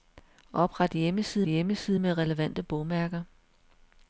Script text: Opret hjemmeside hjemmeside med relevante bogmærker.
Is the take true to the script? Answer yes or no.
yes